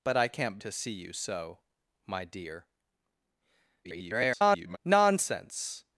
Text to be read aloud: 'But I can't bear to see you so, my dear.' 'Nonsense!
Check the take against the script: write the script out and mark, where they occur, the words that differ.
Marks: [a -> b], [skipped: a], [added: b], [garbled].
'But I can't [skipped: bear] to see you so, my dear.' [garbled] 'Nonsense!